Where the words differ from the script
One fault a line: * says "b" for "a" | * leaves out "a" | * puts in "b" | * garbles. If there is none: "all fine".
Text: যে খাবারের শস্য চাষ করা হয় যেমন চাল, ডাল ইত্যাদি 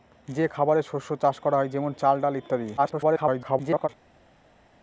* garbles